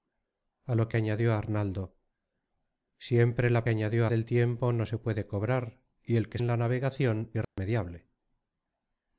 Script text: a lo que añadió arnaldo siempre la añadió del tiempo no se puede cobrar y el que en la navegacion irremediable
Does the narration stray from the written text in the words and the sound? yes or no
yes